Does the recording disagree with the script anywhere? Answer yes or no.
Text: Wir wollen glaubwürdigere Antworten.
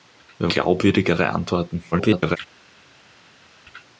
yes